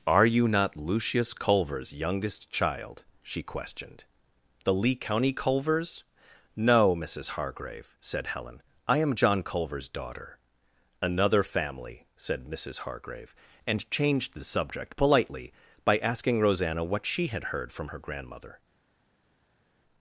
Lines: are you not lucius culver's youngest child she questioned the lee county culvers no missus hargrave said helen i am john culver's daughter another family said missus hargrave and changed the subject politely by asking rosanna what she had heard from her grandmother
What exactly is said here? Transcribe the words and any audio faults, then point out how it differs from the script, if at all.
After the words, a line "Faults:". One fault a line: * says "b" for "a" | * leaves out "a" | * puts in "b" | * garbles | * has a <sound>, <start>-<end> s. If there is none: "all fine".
are you not lucius culver's youngest child she questioned the lee county culvers no missus hargrave said helen i am john culver's daughter another family said missus hargrave and changed the subject politely by asking rosanna what she had heard from her grandmother
Faults:
all fine